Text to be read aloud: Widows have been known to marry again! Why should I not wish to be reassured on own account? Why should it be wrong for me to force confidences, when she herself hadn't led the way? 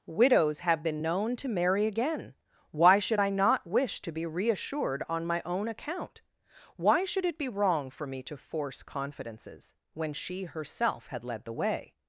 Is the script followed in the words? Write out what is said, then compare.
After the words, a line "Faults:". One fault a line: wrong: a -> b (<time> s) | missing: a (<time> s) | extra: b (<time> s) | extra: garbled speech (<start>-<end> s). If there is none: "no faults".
Widows have been known to marry again! Why should I not wish to be reassured on my own account? Why should it be wrong for me to force confidences, when she herself had led the way?
Faults:
extra: my (5.2 s)
wrong: hadn't -> had (11.1 s)